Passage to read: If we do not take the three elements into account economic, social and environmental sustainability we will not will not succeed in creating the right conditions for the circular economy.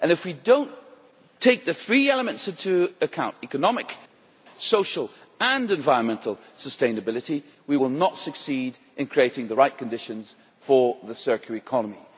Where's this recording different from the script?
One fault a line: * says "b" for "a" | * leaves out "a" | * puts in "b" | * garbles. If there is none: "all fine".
* leaves out "will not"